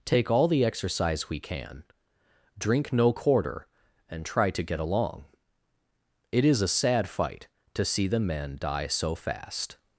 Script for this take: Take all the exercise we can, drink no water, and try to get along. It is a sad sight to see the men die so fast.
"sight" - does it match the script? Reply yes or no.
no